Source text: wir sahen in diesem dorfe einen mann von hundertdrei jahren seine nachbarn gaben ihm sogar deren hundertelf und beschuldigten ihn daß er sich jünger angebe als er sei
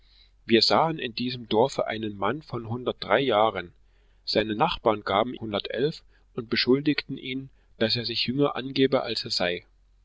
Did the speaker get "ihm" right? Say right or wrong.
wrong